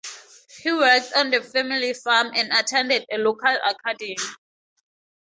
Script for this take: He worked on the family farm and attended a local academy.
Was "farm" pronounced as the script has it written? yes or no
yes